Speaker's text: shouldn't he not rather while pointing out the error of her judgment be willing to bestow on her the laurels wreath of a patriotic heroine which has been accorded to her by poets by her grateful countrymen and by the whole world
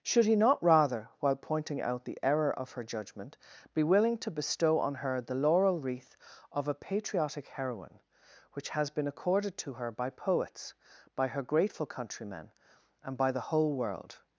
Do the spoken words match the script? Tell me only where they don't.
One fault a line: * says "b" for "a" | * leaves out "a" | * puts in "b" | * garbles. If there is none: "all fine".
* says "should" for "shouldn't"
* says "laurel" for "laurels"